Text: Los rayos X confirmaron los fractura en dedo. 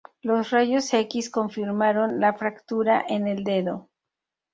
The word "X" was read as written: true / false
true